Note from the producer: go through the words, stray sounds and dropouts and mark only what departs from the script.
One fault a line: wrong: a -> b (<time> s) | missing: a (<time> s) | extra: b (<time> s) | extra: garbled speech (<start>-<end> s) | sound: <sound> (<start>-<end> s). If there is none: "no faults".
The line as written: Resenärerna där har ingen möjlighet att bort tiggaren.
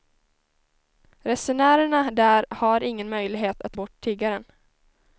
no faults